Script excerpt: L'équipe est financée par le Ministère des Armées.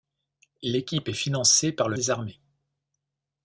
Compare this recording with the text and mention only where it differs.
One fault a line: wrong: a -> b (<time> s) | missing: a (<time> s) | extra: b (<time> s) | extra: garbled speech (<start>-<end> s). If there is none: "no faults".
missing: Ministère (2.0 s)